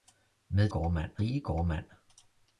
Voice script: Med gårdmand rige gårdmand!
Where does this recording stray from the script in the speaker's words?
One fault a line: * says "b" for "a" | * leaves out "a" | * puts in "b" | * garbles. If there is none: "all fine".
all fine